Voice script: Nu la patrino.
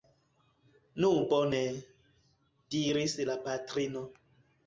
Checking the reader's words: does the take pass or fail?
fail